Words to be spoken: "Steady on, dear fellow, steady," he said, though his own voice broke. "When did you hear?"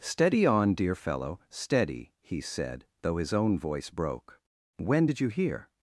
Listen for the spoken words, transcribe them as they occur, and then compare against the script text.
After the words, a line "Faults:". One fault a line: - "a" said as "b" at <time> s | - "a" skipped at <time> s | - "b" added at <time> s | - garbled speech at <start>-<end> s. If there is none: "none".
"Steady on, dear fellow, steady," he said, though his own voice broke. "When did you hear?"
Faults:
none